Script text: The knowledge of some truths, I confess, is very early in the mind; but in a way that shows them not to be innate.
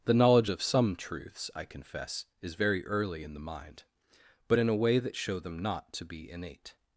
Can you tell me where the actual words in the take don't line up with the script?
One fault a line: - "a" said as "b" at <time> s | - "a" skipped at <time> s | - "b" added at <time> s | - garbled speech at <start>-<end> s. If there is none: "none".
- "shows" said as "show" at 5.2 s